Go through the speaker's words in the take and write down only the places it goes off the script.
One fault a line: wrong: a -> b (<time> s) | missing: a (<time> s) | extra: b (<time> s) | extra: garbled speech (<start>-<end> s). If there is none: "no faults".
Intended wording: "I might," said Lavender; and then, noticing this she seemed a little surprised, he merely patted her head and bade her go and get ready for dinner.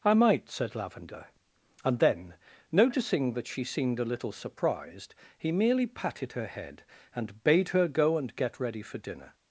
wrong: this -> that (3.4 s)